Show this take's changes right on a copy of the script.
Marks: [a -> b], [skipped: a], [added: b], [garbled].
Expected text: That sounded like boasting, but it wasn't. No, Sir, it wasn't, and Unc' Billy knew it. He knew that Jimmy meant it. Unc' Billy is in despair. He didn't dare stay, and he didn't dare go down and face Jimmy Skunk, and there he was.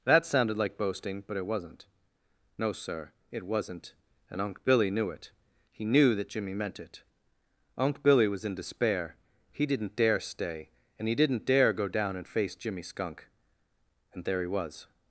That sounded like boasting, but it wasn't. No, Sir, it wasn't, and Unc' Billy knew it. He knew that Jimmy meant it. Unc' Billy [is -> was] in despair. He didn't dare stay, and he didn't dare go down and face Jimmy Skunk, and there he was.